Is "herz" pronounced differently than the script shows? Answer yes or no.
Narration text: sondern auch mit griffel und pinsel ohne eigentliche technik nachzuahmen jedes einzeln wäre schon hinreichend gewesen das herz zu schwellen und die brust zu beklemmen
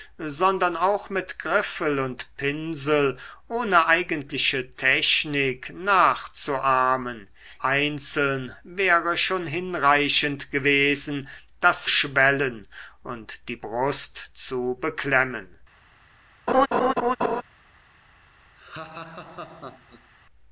yes